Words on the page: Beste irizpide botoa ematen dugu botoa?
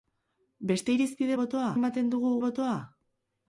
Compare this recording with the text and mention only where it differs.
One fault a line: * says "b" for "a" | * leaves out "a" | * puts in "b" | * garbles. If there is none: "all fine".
all fine